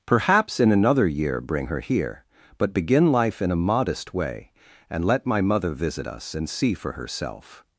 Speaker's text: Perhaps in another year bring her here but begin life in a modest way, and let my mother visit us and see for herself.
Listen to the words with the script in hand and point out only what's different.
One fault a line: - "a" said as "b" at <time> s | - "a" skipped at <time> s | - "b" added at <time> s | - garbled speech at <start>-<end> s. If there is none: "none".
none